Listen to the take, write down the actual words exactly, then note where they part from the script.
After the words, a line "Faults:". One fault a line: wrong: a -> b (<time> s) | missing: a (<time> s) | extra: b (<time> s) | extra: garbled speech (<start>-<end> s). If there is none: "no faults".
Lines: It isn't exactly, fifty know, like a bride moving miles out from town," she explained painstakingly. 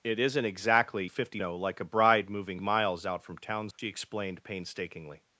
It isn't exactly, fifty know, like a bride moving miles out from town," she explained painstakingly.
Faults:
no faults